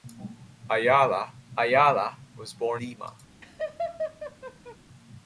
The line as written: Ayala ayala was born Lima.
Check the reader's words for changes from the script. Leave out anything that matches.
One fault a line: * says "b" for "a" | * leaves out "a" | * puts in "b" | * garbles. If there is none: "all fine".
all fine